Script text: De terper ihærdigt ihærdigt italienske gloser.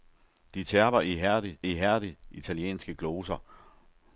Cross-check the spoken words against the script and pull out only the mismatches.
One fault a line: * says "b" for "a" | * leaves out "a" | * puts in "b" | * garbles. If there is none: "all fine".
all fine